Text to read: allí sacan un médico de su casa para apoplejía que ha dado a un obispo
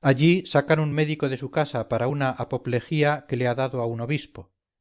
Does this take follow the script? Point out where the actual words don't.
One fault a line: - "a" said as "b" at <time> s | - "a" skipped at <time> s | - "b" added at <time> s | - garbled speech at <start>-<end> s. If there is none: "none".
- "una" added at 2.0 s
- "le" added at 3.3 s